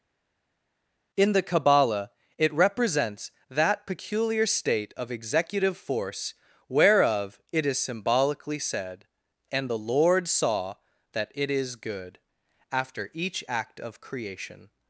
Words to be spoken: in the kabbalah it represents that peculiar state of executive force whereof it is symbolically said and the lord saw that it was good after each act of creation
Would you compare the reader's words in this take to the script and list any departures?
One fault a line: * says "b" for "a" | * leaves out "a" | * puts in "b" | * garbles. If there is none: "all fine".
* says "is" for "was"